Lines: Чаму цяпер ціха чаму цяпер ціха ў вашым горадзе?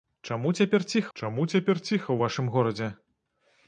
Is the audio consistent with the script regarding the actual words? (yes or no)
yes